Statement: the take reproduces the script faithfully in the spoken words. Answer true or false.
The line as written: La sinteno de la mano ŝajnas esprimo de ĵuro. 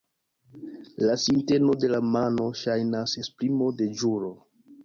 true